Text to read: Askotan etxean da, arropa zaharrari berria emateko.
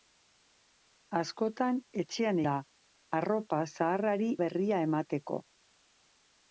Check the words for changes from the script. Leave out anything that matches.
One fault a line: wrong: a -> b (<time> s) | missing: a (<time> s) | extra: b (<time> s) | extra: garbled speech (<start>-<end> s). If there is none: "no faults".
no faults